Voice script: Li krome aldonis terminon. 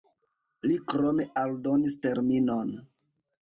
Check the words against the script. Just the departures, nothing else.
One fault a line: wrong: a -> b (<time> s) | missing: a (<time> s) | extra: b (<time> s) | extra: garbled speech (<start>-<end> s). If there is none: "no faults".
no faults